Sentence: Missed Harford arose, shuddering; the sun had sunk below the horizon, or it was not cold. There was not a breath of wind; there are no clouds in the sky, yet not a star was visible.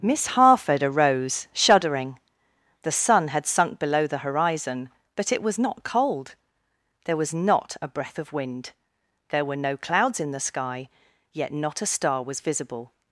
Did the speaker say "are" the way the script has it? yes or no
no